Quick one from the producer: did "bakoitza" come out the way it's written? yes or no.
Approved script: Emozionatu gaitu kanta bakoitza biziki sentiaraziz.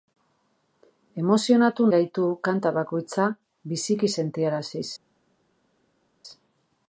yes